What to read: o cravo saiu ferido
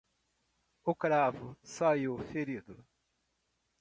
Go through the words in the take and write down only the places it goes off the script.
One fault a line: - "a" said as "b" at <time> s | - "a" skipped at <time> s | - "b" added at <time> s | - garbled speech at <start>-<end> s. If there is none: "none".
none